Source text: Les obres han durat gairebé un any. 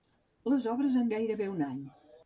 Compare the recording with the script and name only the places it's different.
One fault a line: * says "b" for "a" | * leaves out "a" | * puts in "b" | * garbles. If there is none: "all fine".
* leaves out "durat"